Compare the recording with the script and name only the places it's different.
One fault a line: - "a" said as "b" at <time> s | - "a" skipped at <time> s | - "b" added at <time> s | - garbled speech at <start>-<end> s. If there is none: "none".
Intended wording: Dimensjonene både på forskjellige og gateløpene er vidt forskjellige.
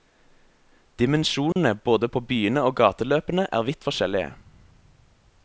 - "forskjellige" said as "byene" at 2.3 s